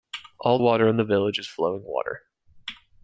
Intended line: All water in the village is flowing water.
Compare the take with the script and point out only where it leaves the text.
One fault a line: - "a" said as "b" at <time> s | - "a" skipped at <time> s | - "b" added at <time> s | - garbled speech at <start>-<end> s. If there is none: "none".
none